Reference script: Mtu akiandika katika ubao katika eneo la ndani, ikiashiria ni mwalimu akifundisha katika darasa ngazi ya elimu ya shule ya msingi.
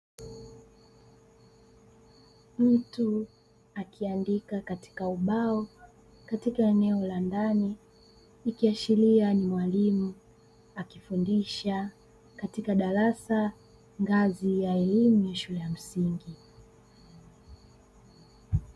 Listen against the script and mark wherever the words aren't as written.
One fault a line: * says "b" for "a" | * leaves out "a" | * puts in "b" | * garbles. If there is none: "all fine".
all fine